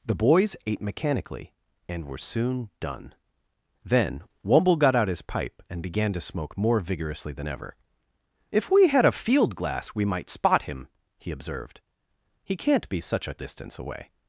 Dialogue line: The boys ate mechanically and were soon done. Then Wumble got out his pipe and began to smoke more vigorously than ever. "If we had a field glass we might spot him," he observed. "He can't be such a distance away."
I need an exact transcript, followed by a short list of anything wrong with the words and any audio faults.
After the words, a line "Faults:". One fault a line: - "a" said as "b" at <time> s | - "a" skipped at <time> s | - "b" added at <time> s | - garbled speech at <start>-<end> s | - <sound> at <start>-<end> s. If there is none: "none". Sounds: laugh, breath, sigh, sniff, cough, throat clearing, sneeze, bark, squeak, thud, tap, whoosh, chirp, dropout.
The boys ate mechanically and were soon done. Then Wumble got out his pipe and began to smoke more vigorously than ever. "If we had a field glass we might spot him," he observed. "He can't be such a distance away."
Faults:
none